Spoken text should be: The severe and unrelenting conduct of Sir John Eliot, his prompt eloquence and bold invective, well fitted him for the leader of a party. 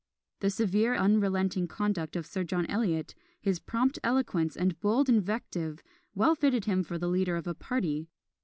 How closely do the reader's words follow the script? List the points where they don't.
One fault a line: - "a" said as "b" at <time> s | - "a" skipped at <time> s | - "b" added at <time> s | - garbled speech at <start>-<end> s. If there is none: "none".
- "and" skipped at 0.9 s